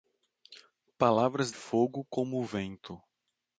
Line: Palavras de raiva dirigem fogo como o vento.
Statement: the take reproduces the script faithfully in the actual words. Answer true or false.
false